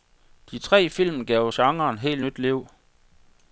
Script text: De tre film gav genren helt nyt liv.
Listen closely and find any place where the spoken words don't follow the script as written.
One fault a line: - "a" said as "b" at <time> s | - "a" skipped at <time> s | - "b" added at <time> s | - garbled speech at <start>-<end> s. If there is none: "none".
none